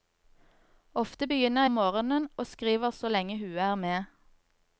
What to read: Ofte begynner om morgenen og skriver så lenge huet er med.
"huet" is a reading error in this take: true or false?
false